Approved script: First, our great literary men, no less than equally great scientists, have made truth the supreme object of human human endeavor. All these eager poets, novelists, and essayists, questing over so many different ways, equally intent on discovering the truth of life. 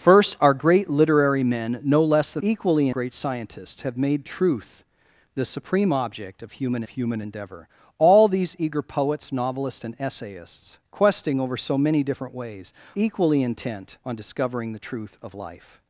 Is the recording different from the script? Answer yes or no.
no